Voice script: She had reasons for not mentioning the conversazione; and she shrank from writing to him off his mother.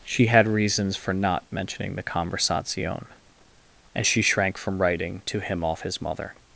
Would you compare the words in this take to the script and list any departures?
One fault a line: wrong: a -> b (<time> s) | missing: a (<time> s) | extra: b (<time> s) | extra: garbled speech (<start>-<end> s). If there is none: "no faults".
no faults